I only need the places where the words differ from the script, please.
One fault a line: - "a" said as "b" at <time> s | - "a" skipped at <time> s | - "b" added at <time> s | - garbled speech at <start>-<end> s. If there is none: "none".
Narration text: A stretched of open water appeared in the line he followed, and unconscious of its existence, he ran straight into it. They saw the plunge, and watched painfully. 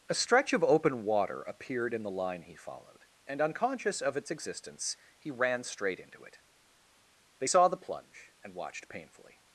- "stretched" said as "stretch" at 0.1 s